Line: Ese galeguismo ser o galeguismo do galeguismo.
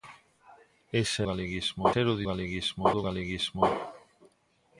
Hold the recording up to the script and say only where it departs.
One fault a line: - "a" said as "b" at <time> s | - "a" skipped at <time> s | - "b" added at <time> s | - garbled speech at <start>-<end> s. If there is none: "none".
none